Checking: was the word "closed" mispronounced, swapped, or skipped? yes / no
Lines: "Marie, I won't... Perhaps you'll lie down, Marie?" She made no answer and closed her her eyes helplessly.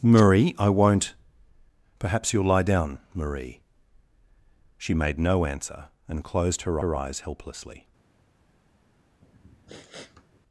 no